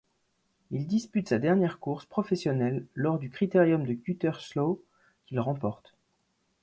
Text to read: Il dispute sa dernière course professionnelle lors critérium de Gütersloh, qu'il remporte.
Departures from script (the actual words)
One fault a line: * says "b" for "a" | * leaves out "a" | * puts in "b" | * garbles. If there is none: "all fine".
* puts in "du"